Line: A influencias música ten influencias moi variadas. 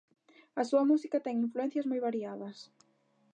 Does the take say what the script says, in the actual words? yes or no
no